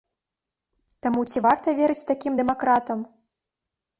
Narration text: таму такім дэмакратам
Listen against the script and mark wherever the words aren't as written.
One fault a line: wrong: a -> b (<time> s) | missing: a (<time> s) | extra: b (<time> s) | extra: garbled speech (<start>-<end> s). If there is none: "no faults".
extra: ці варта верыць (1.3 s)